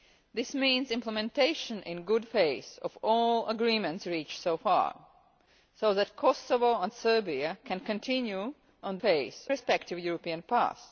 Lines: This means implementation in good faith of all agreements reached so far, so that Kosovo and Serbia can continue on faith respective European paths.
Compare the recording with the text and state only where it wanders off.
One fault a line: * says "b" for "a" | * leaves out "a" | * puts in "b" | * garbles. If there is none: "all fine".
all fine